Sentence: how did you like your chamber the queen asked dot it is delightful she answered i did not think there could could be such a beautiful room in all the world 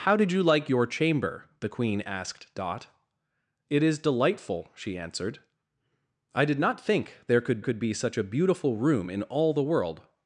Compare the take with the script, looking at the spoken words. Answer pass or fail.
pass